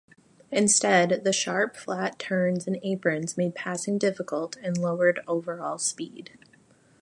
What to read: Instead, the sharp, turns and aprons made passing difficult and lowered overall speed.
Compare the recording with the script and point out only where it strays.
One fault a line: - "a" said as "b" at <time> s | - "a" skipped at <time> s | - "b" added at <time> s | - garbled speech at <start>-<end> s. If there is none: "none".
- "flat" added at 1.8 s